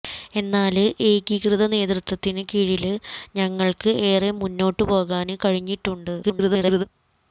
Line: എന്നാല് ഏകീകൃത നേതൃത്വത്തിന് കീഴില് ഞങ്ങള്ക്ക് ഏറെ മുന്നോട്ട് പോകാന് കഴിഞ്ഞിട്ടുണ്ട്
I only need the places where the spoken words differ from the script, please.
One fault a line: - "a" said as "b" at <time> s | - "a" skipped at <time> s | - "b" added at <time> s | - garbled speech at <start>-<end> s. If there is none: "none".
- garbled speech at 6.2-6.8 s